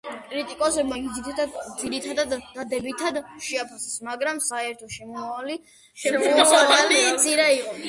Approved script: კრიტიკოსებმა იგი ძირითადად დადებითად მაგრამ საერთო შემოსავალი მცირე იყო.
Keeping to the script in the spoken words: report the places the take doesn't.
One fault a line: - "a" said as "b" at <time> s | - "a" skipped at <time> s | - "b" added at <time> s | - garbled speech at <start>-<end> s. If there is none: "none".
- "შეაფასეს" added at 3.5 s